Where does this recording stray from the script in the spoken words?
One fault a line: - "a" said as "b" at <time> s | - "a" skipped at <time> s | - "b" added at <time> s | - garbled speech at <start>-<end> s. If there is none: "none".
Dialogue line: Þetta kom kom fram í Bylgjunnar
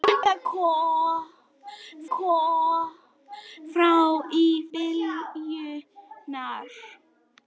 none